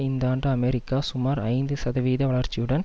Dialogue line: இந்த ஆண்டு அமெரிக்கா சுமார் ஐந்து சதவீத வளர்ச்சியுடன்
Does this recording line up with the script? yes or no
yes